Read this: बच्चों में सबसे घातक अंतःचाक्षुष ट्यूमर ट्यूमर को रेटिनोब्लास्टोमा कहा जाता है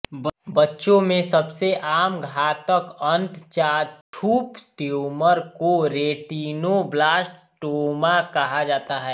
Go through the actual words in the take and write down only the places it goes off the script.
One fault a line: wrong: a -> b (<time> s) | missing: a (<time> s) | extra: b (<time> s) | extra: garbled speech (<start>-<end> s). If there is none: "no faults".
extra: आम (1.8 s)
missing: ट्यूमर (5.4 s)